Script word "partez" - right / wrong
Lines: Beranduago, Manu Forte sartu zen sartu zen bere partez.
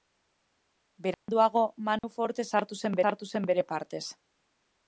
right